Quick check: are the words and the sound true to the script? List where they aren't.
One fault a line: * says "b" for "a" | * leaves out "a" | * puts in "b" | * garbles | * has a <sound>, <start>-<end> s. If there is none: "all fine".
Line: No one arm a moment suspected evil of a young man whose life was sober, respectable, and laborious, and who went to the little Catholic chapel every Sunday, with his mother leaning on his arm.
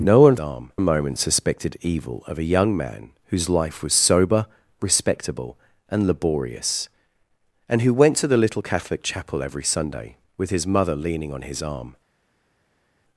all fine